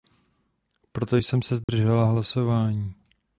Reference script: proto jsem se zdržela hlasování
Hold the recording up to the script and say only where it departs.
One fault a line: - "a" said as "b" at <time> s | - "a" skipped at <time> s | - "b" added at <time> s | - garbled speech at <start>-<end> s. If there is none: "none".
none